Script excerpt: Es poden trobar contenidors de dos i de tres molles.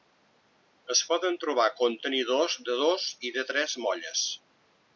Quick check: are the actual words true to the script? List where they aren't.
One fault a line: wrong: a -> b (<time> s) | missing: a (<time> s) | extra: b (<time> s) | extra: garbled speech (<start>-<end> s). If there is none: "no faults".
no faults